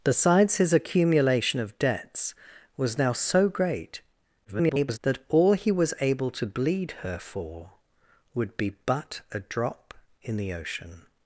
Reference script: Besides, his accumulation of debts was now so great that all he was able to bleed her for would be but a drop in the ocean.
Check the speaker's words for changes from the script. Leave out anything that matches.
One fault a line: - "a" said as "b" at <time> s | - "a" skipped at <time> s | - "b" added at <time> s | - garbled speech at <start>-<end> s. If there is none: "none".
- garbled speech at 4.4-5.0 s